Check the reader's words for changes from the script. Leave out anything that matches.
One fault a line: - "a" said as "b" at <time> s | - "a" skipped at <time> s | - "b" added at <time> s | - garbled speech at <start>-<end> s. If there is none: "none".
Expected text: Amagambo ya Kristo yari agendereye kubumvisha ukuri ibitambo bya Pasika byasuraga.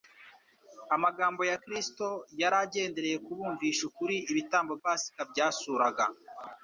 - "bya" skipped at 4.7 s